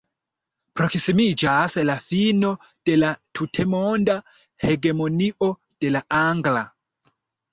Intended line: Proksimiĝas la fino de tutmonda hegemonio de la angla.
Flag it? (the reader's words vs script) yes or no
yes